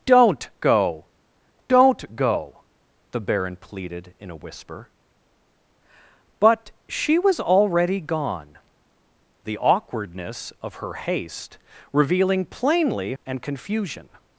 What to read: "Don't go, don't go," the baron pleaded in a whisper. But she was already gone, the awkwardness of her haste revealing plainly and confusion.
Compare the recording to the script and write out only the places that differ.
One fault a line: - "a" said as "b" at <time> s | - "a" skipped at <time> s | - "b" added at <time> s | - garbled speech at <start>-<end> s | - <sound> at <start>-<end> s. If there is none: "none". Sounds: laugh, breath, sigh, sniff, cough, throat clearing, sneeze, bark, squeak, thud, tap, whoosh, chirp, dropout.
none